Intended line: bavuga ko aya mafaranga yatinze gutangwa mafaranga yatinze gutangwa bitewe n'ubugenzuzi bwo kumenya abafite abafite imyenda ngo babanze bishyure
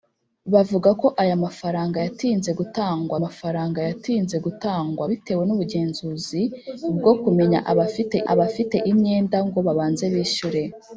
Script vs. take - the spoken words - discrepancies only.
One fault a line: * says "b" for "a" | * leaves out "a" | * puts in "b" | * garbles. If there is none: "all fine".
all fine